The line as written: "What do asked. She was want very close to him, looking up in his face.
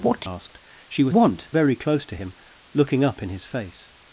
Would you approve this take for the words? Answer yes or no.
yes